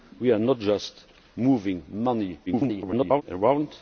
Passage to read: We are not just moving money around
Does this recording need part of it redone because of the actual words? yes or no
yes